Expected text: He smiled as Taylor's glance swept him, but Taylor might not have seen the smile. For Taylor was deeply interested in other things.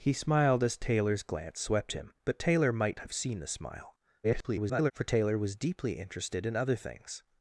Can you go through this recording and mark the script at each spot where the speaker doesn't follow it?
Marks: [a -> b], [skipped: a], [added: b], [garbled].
He smiled as Taylor's glance swept him, but Taylor might [skipped: not] have seen the smile. [garbled] For Taylor was deeply interested in other things.